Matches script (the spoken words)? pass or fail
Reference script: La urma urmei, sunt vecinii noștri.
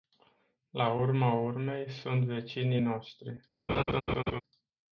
pass